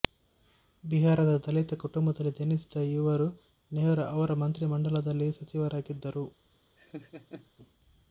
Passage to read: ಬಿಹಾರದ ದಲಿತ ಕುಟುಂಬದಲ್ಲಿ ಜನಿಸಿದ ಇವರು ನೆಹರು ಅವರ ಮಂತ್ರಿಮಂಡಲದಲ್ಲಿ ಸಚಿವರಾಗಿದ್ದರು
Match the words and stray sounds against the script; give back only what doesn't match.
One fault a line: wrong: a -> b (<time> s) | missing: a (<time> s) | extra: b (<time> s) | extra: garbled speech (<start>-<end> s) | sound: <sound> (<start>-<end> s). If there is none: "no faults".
sound: laugh (6.8-7.5 s)